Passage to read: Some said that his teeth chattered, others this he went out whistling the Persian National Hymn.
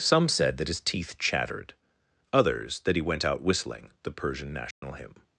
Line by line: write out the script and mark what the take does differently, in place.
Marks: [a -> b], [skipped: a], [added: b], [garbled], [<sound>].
Some said that his teeth chattered, others [this -> that] he went out whistling the Persian National [dropout] Hymn.